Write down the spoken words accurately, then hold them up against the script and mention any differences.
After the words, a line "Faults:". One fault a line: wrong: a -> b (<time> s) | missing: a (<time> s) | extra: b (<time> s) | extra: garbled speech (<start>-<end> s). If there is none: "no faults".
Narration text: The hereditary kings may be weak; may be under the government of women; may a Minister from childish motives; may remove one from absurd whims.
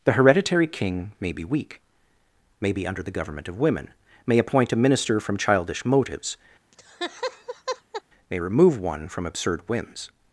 The hereditary king may be weak; may be under the government of women; may appoint a Minister from childish motives; may remove one from absurd whims.
Faults:
wrong: kings -> king (0.7 s)
extra: appoint (4.4 s)